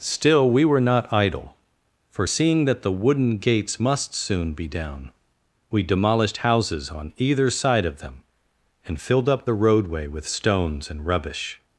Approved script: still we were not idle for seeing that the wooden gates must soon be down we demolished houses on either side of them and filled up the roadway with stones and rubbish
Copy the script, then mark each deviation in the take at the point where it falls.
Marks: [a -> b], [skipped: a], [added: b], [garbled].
still we were not idle for seeing that the wooden gates must soon be down we demolished houses on either side of them and filled up the roadway with stones and rubbish